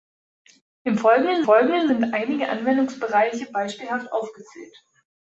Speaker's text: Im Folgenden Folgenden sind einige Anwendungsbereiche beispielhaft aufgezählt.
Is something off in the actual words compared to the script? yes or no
no